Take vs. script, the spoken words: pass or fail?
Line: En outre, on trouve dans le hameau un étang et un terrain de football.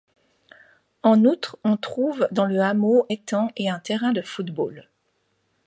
fail